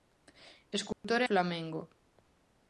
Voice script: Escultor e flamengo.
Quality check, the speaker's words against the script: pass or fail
pass